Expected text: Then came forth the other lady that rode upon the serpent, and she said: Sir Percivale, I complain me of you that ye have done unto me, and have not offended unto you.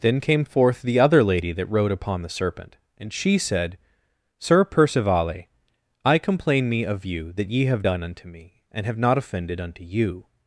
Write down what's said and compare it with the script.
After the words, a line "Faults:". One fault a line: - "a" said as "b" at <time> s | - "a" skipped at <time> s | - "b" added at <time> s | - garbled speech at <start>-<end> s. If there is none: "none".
Then came forth the other lady that rode upon the serpent, and she said: Sir Percivale, I complain me of you that ye have done unto me, and have not offended unto you.
Faults:
none